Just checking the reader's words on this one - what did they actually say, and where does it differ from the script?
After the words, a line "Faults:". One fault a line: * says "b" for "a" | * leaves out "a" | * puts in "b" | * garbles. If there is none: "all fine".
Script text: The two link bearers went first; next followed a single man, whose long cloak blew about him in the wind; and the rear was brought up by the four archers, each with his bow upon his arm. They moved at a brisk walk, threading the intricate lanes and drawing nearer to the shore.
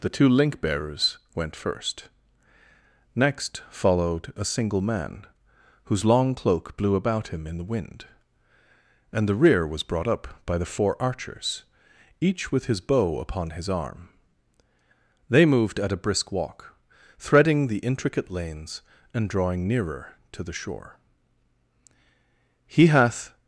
The two link bearers went first; next followed a single man, whose long cloak blew about him in the wind; and the rear was brought up by the four archers, each with his bow upon his arm. They moved at a brisk walk, threading the intricate lanes and drawing nearer to the shore. "He hath
Faults:
* puts in "He hath"